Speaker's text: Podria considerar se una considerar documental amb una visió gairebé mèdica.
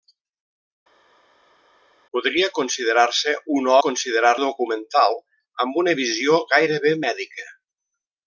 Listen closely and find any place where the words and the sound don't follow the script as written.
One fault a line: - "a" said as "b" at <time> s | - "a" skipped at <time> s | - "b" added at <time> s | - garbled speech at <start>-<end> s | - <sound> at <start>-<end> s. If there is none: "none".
none